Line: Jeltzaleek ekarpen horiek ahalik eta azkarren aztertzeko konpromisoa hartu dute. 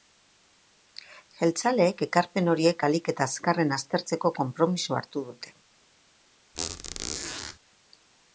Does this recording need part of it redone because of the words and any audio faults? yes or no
yes